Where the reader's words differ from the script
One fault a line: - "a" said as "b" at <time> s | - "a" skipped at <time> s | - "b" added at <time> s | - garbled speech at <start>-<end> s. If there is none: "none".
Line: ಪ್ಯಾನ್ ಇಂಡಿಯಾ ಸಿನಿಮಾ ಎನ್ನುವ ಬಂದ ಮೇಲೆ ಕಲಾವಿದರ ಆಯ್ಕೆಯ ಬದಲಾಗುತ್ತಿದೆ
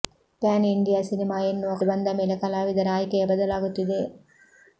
none